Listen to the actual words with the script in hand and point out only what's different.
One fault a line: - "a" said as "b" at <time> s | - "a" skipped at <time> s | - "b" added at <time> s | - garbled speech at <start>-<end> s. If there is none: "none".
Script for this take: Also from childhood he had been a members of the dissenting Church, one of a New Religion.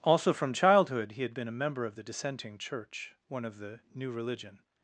- "members" said as "member" at 1.6 s
- "a" said as "the" at 3.6 s